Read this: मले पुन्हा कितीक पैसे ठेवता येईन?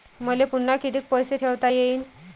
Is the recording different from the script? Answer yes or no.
no